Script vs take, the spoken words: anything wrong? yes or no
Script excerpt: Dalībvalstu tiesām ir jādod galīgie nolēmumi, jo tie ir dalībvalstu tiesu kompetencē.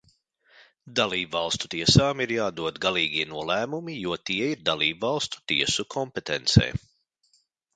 no